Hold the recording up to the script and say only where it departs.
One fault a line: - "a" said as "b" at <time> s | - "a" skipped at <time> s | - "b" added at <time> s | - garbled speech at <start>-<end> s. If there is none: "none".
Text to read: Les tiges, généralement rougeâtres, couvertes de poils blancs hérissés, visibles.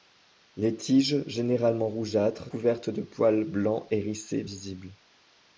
none